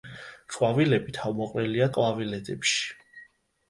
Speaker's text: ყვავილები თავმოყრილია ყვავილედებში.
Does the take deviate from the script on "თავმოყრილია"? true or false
false